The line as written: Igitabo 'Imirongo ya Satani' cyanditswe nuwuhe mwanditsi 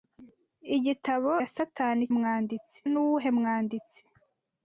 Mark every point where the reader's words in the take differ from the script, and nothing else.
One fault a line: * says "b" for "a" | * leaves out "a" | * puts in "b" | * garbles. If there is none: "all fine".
* leaves out "Imirongo"
* says "mwanditsi" for "cyanditswe"